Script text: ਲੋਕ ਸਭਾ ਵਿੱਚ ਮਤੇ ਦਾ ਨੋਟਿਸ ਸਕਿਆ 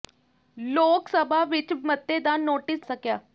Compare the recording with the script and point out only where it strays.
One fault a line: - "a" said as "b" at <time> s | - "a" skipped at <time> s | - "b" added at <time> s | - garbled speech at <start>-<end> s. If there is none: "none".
none